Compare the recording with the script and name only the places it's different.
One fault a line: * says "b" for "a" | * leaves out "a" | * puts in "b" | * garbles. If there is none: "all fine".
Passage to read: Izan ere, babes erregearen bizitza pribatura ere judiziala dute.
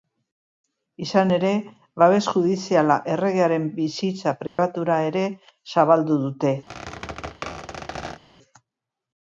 * puts in "judiziala"
* says "zabaldu" for "judiziala"